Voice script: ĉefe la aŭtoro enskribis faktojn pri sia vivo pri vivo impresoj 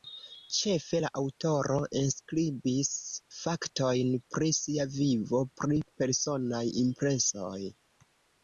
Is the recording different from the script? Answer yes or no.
yes